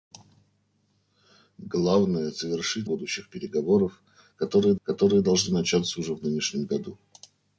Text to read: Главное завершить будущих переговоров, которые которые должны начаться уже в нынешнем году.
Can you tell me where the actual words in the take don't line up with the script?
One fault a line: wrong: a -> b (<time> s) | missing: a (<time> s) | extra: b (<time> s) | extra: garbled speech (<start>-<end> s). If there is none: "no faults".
no faults